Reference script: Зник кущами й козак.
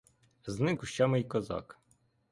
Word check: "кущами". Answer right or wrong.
right